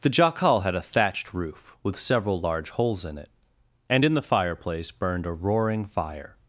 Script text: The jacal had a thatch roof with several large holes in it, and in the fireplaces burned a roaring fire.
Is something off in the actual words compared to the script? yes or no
yes